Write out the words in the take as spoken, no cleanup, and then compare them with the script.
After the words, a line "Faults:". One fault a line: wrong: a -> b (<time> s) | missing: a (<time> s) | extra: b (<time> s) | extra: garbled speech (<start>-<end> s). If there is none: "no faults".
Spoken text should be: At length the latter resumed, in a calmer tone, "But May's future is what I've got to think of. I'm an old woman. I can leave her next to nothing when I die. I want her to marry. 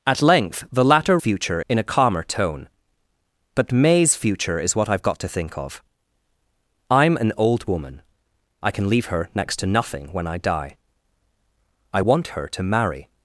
At length the latter future, in a calmer tone, "But May's future is what I've got to think of. I'm an old woman. I can leave her next to nothing when I die. I want her to marry.
Faults:
wrong: resumed -> future (1.2 s)